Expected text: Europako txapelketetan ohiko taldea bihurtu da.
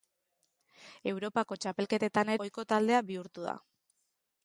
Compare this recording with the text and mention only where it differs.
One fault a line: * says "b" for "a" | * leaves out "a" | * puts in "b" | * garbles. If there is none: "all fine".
all fine